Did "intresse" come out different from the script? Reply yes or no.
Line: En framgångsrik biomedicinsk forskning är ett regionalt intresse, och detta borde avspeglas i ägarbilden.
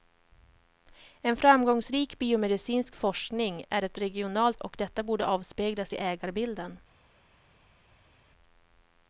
yes